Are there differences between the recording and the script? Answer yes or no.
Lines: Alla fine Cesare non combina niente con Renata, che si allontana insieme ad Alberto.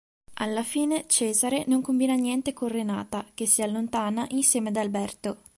no